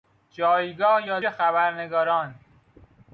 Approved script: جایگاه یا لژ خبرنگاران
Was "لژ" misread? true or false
true